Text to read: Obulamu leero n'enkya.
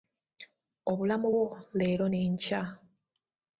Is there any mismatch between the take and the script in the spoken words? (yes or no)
yes